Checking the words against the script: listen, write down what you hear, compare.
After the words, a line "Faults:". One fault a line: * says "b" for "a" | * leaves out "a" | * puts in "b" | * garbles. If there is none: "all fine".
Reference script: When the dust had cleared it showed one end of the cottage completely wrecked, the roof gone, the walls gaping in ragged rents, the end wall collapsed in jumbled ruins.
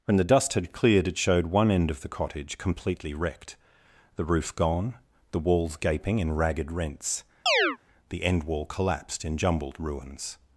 When the dust had cleared it showed one end of the cottage completely wrecked, the roof gone, the walls gaping in ragged rents, the end wall collapsed in jumbled ruins.
Faults:
all fine